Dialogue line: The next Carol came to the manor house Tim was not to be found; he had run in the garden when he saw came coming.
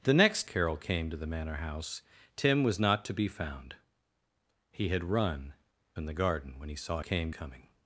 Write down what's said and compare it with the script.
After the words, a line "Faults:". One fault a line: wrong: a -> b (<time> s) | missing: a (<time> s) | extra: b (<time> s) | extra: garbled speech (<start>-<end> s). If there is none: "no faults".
The next Carol came to the manor house Tim was not to be found; he had run in the garden when he saw came coming.
Faults:
no faults